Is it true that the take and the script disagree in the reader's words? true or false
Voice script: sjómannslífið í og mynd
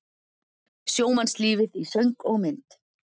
true